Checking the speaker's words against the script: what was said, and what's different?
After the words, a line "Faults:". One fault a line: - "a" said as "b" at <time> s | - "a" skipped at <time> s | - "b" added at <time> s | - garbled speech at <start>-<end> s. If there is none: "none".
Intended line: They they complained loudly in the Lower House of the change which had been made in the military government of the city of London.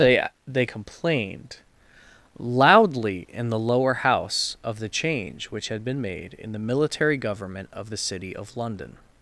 They they complained loudly in the Lower House of the change which had been made in the military government of the city of London.
Faults:
none